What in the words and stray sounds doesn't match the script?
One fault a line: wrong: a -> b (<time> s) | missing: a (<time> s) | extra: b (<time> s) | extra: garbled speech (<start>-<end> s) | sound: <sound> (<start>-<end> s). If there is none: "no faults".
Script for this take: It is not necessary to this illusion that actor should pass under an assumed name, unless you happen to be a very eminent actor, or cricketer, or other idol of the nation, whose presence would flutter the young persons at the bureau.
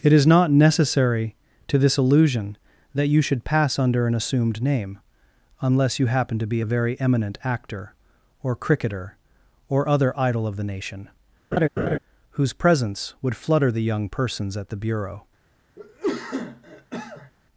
wrong: actor -> you (3.1 s)
sound: laugh (11.5-12.0 s)
sound: cough (15.8-17.3 s)